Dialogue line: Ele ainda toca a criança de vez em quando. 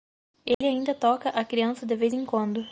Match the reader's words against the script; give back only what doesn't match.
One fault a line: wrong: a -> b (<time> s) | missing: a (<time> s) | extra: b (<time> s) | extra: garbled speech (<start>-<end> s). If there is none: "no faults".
no faults